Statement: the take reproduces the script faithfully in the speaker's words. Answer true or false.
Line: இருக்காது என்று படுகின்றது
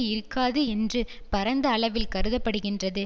false